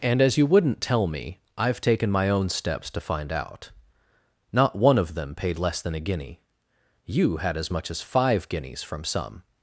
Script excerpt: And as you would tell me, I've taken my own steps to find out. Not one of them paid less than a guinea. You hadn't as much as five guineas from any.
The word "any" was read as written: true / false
false